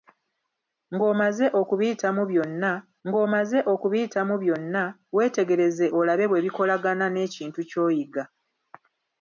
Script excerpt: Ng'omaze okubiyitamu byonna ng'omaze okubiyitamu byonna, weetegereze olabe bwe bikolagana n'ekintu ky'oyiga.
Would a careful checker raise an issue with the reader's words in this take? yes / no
no